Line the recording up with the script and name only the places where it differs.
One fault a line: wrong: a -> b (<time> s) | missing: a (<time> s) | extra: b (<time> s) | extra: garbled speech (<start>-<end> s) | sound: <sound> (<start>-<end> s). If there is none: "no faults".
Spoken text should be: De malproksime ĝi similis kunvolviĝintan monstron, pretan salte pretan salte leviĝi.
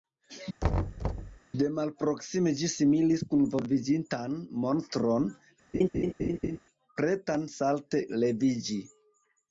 sound: thud (0.6-1.4 s)
sound: laugh (5.7-6.6 s)
missing: pretan salte (8.0 s)